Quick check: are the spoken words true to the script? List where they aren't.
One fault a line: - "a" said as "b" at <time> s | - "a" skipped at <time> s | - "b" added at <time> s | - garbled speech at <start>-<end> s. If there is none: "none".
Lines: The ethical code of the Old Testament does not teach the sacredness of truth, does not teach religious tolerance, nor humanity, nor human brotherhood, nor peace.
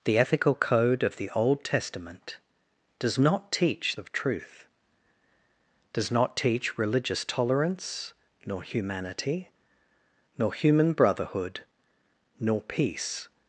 - "the sacredness" skipped at 4.0 s